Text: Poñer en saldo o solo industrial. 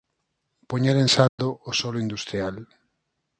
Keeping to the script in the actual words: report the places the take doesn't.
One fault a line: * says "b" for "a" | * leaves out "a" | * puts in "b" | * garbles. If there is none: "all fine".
all fine